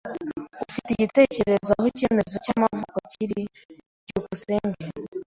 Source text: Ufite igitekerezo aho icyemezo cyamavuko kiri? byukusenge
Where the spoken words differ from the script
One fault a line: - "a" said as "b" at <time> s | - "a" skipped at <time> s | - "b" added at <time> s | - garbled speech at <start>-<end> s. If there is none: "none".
none